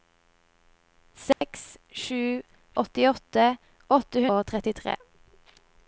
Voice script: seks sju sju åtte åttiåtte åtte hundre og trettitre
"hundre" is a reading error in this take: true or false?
true